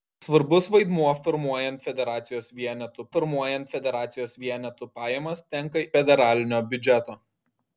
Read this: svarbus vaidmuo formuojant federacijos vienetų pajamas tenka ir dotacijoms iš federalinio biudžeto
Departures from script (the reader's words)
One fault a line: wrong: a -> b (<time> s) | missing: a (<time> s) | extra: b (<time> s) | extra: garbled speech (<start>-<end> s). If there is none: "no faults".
wrong: pajamas tenka ir dotacijoms iš -> formuojant federacijos vienetų pajamas tenka (3.2 s)